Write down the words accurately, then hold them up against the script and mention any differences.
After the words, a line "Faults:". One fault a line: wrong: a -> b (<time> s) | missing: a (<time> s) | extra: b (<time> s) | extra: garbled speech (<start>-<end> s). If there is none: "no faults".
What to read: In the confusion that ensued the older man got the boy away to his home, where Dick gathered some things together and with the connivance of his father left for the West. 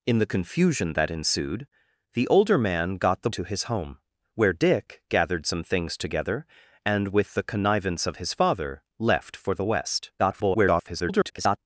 In the confusion that ensued the older man got the to his home, where Dick gathered some things together and with the connivance of his father left for the West. [garbled]
Faults:
missing: boy away (3.3 s)
extra: garbled speech (10.2-11.6 s)